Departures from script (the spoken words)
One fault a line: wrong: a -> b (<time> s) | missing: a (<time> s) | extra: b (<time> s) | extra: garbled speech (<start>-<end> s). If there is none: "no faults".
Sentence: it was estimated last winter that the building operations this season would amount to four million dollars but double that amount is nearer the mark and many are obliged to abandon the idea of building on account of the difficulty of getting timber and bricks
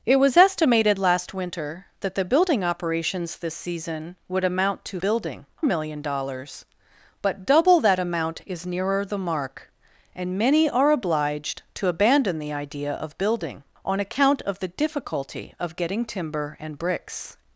wrong: four -> building (5.0 s)